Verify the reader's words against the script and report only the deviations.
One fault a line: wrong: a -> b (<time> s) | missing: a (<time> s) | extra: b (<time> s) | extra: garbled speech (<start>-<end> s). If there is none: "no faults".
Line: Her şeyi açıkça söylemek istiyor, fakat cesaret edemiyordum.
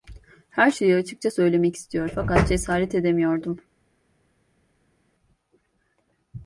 no faults